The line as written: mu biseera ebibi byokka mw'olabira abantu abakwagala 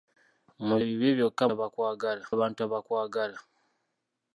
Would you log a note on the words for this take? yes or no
yes